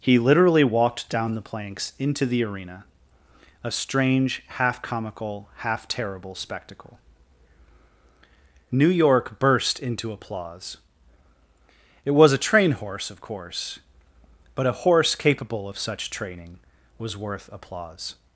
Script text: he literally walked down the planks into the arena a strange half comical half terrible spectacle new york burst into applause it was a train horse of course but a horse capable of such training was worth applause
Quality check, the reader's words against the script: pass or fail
pass